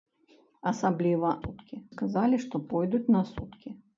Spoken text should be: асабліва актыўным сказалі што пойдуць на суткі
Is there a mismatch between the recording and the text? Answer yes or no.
yes